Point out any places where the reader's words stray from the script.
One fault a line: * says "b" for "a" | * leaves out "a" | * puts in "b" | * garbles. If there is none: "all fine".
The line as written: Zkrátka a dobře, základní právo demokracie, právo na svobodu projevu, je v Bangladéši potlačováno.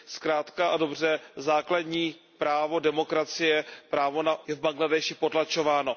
* leaves out "svobodu projevu"